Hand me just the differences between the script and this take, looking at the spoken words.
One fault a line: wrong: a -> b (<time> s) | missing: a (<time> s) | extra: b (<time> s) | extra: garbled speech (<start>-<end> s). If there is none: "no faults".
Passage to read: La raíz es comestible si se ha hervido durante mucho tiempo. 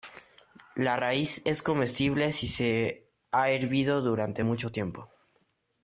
no faults